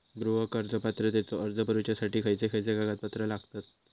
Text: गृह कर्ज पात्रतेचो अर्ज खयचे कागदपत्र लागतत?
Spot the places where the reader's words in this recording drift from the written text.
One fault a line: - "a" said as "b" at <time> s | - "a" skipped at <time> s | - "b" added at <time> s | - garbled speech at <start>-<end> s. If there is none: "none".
- "भरुच्यासाठी खयचे" added at 1.7 s